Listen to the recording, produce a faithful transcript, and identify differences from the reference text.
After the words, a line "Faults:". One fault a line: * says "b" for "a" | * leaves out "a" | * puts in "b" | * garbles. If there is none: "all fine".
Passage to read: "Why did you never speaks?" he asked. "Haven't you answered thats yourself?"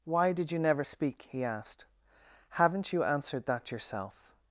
"Why did you never speak?" he asked. "Haven't you answered that yourself?"
Faults:
* says "speak" for "speaks"
* says "that" for "thats"